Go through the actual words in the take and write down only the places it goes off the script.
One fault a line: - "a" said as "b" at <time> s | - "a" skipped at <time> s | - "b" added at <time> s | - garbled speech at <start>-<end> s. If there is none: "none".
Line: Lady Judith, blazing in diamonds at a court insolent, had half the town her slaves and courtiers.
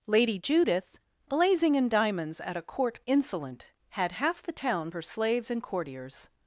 none